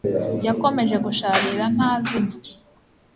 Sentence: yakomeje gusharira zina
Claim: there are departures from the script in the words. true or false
true